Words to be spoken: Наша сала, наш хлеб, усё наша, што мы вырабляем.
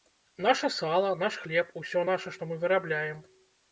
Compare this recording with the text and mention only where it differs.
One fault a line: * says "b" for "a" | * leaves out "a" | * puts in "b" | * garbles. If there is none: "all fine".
all fine